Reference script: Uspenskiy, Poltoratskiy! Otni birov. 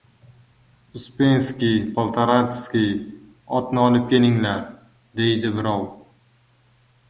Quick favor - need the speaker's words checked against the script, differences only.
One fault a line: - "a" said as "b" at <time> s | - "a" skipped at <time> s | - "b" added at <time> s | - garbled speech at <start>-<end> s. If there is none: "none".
- "olib kelinglar deydi" added at 3.9 s